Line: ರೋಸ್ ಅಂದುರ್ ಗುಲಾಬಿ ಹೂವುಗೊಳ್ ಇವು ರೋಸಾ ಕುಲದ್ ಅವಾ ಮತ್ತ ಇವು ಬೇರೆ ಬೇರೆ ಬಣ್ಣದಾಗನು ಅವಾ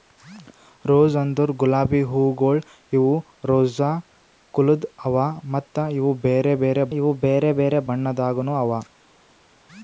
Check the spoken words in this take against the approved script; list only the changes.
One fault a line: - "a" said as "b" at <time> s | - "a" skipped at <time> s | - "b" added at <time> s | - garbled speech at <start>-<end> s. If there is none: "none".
- "ಇವು ಬೇರೆ ಬೇರೆ" added at 7.0 s